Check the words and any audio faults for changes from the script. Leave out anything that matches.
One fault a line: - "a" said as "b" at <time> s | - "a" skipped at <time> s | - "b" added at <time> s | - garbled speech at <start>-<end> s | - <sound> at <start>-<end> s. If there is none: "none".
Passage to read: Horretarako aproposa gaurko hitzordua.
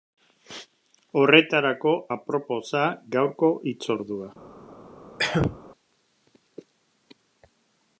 - cough at 5.2-5.6 s